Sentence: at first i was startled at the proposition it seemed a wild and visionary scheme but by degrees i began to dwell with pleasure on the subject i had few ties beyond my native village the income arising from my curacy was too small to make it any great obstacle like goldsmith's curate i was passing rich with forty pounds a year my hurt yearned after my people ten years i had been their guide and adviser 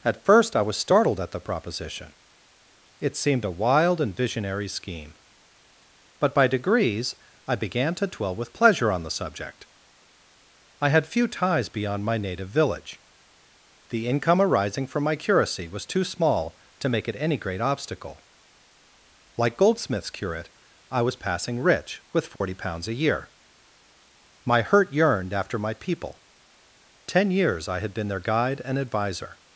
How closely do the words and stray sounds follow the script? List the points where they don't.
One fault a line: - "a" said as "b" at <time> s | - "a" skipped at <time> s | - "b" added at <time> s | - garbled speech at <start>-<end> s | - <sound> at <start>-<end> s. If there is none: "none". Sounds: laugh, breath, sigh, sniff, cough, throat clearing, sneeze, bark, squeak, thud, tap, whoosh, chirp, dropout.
- dropout at 22.4-22.4 s